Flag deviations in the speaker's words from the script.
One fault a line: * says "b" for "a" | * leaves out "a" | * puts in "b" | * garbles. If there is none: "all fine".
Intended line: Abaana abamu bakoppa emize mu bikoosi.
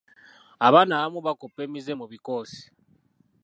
all fine